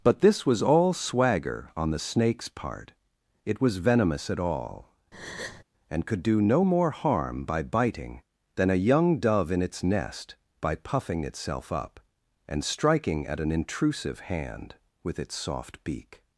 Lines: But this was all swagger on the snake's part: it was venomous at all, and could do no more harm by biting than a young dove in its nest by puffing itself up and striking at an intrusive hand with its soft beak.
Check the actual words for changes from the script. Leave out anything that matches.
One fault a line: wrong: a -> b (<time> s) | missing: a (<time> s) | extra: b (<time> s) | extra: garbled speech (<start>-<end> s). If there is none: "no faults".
no faults